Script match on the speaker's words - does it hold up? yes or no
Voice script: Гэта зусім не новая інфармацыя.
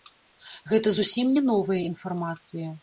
yes